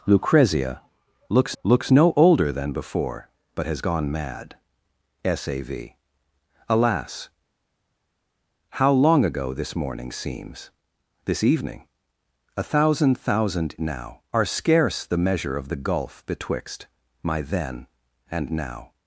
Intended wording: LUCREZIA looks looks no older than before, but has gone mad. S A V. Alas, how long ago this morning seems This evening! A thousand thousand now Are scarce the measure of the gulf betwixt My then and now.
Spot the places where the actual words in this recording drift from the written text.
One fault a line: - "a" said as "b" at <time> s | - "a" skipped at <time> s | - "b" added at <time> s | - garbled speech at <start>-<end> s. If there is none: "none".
none